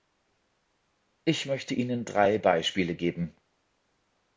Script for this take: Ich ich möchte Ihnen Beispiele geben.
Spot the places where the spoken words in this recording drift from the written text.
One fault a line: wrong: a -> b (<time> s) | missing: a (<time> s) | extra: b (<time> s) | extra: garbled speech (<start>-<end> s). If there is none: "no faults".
missing: ich (1.4 s)
extra: drei (2.0 s)